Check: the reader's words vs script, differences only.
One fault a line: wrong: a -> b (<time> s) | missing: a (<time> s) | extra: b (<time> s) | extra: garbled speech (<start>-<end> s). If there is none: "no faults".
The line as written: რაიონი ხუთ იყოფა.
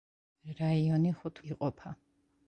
no faults